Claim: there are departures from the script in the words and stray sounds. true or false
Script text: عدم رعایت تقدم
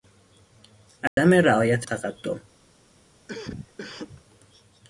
true